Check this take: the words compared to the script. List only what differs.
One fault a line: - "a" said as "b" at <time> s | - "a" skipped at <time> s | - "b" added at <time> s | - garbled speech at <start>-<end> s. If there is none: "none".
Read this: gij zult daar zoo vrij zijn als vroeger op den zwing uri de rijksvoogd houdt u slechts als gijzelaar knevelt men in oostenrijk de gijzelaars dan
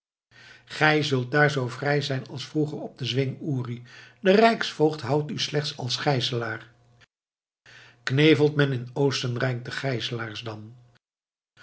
none